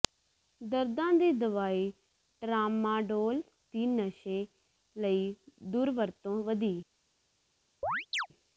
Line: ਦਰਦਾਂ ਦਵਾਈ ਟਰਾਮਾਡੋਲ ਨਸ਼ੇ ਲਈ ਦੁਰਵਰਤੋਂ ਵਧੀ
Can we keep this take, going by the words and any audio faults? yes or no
no